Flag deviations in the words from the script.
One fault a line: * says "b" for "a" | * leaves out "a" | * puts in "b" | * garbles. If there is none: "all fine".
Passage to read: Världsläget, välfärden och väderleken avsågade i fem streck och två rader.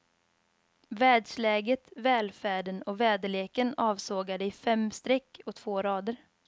all fine